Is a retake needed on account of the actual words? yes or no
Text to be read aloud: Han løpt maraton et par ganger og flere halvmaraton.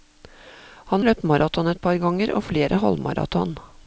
no